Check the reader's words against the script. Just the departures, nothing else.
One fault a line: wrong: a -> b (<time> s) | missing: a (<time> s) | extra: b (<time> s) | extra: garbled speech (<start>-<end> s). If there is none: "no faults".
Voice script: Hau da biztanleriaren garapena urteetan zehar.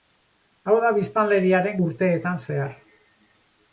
missing: garapena (1.8 s)